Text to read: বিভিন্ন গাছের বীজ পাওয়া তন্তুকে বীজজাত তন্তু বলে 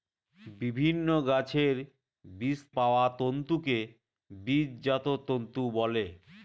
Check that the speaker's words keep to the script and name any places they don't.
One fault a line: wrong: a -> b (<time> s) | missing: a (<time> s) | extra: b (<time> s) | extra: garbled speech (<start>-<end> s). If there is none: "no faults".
no faults